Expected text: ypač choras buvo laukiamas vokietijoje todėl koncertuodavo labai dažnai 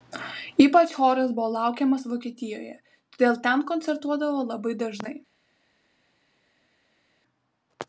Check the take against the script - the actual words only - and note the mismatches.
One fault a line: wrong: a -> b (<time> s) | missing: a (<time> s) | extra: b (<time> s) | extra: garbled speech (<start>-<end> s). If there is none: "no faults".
extra: ten (3.5 s)